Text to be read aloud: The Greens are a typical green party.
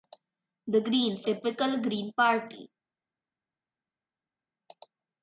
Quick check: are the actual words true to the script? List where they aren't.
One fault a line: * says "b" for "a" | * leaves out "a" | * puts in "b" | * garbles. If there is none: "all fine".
* leaves out "are a"